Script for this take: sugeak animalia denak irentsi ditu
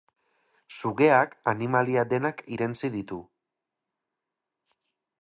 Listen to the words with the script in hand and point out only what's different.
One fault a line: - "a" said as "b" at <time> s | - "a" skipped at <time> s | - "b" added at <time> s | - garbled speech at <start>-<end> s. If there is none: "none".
none